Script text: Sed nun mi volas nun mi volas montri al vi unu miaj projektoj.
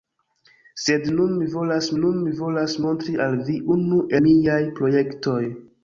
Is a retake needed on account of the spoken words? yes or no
no